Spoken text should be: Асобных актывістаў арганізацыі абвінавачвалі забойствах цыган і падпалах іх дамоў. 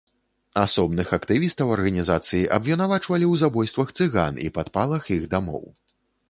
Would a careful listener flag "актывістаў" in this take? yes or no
no